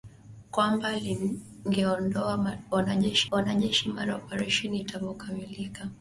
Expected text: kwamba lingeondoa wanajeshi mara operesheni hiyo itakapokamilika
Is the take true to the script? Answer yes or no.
no